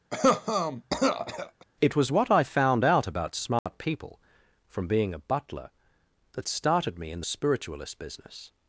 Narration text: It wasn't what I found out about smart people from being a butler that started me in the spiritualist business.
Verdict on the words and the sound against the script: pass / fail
fail